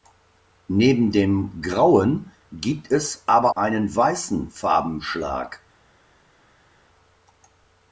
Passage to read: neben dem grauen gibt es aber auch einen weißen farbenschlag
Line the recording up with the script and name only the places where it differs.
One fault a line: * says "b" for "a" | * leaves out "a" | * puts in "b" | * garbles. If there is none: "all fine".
* leaves out "auch"